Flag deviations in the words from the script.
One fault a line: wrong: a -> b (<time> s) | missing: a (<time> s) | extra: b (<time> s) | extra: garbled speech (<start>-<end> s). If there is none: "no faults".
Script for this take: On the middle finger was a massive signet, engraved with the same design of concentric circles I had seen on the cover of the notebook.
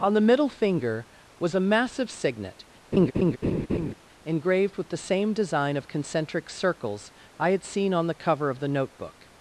no faults